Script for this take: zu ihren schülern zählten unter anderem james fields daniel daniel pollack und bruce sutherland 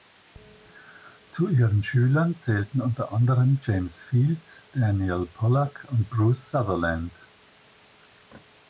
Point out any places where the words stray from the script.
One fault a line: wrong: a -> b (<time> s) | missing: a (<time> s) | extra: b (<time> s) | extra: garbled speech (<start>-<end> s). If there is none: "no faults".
missing: daniel (5.3 s)